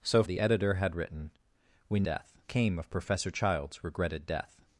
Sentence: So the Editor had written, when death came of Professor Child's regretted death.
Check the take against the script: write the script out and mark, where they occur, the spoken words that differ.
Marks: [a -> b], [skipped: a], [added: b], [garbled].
So the Editor had written, when death came of Professor Child's regretted death.